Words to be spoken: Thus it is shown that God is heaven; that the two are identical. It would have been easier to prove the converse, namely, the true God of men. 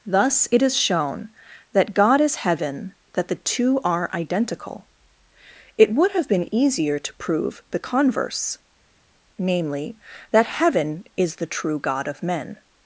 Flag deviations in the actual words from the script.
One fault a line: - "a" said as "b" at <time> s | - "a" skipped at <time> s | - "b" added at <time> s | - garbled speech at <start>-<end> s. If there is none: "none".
- "that heaven is" added at 10.3 s